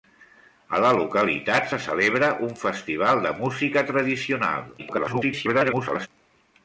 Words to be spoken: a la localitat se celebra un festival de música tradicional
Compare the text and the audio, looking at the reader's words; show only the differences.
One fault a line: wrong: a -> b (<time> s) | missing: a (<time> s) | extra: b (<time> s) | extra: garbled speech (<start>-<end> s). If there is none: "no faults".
extra: garbled speech (4.8-6.1 s)